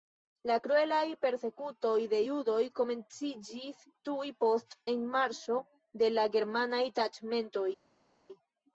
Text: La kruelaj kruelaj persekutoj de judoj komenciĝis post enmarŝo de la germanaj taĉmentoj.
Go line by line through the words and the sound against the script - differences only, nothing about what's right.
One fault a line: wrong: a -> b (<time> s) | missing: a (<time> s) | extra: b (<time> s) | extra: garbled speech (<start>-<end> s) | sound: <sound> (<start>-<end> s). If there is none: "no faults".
missing: kruelaj (1.1 s)
extra: tuj (4.1 s)